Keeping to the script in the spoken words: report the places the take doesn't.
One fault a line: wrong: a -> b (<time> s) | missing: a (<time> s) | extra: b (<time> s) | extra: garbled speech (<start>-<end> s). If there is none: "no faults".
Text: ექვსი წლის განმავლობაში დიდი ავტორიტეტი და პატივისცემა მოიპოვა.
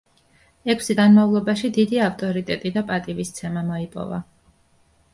missing: წლის (0.9 s)